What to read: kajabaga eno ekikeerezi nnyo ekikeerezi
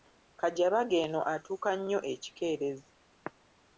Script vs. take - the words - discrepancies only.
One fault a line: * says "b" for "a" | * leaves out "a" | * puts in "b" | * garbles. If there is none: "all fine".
* says "atuuka" for "ekikeerezi"